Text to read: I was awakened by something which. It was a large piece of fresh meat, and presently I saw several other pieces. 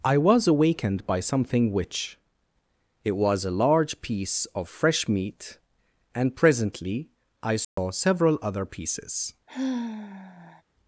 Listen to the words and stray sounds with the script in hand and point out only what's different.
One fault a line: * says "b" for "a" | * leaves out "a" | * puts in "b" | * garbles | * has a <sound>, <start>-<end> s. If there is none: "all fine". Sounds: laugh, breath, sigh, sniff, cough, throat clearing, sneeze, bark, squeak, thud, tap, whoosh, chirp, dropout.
* has a dropout, 7.6-7.8 s
* has a sigh, 9.5-10.6 s